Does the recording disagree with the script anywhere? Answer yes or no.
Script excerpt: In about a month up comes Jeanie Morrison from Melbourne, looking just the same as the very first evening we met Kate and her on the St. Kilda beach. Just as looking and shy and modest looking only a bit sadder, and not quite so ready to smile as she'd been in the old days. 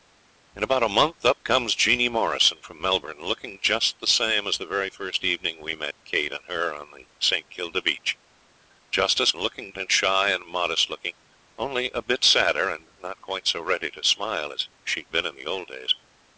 no